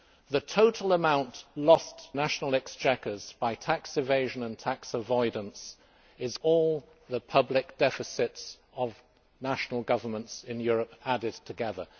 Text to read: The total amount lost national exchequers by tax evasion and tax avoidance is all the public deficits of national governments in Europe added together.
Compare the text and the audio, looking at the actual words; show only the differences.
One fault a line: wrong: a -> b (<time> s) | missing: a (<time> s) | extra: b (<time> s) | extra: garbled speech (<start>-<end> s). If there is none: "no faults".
no faults